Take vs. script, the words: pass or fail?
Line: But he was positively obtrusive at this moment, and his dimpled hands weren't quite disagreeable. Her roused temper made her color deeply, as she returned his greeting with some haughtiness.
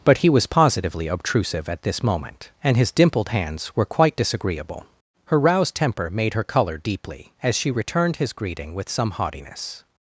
fail